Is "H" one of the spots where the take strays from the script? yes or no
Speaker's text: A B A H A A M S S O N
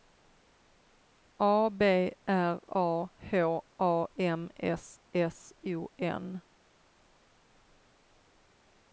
no